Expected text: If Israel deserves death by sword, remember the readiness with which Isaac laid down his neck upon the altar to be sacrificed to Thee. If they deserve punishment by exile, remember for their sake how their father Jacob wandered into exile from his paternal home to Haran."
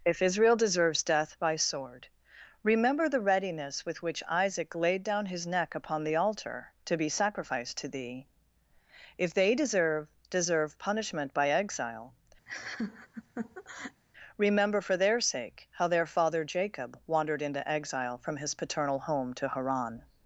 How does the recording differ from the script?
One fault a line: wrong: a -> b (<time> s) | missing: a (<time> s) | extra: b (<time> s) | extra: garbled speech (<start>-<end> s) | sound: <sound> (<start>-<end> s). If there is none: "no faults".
extra: deserve (10.3 s)
sound: laugh (12.5-14.0 s)